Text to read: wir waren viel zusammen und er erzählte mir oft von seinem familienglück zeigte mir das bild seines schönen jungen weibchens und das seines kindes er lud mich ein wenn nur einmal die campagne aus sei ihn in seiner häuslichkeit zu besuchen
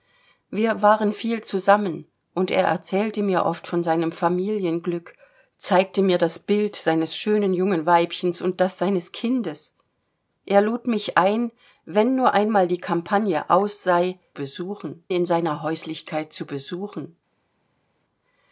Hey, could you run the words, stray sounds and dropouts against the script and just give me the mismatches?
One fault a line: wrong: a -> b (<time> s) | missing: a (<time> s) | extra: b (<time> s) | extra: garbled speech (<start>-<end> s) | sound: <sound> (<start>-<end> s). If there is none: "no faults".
wrong: ihn -> besuchen (14.4 s)